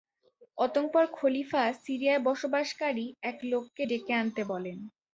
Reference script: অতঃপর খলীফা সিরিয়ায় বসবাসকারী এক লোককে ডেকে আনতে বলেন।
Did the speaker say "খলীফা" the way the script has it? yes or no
yes